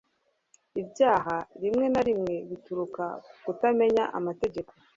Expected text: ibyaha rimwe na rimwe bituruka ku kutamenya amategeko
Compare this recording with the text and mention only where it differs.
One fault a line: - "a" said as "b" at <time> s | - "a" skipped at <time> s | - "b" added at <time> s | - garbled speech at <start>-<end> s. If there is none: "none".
none